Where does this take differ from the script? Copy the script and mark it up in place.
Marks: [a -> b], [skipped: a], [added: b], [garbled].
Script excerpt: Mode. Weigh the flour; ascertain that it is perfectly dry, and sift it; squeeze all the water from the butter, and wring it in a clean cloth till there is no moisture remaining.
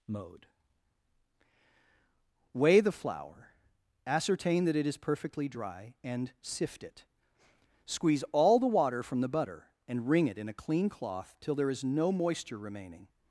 Mode. Weigh the flour; ascertain that it is perfectly dry, and sift it; squeeze all the water from the butter, and wring it in a clean cloth till there is no moisture remaining.